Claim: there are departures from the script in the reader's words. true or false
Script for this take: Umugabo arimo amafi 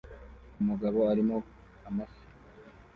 false